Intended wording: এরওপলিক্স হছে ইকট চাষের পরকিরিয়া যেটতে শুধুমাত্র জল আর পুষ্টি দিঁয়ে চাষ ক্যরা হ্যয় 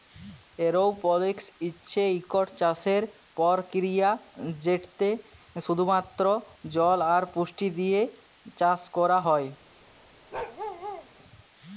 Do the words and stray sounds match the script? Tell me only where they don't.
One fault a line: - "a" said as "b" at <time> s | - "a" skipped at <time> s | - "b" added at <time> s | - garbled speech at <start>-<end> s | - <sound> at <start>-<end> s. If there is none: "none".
- bark at 10.3-11.1 s